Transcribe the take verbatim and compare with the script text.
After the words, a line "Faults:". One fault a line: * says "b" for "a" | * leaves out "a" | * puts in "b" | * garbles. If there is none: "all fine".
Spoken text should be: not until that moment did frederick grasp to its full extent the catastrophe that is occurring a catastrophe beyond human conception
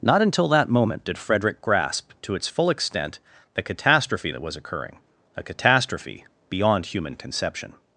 not until that moment did frederick grasp to its full extent the catastrophe that was occurring a catastrophe beyond human conception
Faults:
* says "was" for "is"